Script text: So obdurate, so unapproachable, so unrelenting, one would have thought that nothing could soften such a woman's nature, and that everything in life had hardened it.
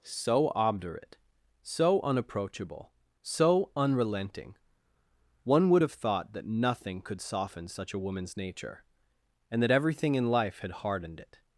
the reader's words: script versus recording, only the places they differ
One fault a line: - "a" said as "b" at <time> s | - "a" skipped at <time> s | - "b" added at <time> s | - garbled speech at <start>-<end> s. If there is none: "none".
none